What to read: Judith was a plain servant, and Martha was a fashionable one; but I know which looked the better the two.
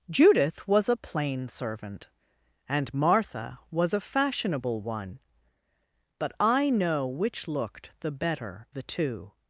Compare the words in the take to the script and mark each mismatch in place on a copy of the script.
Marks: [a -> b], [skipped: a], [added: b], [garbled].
Judith was a plain servant, and Martha was a fashionable one; but I know which looked the better the two.